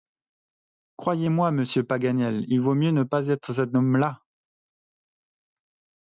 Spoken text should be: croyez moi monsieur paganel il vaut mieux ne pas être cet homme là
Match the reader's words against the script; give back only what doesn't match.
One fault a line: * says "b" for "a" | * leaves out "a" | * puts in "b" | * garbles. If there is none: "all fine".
all fine